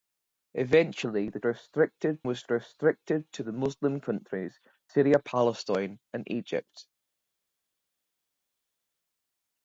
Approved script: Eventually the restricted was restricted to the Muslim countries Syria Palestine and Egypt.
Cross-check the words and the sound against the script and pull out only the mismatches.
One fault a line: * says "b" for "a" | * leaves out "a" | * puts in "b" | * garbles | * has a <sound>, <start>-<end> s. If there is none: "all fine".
all fine